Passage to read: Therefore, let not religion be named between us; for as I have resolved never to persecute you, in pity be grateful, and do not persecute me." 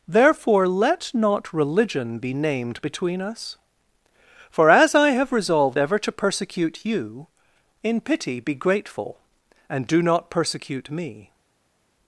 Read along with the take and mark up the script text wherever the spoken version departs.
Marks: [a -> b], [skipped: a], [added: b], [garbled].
Therefore, let not religion be named between us; for as I have resolved [never -> ever] to persecute you, in pity be grateful, and do not persecute me."